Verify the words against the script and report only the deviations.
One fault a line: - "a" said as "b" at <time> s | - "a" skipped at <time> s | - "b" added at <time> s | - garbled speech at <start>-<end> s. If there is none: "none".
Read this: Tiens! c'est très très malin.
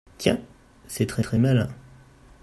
none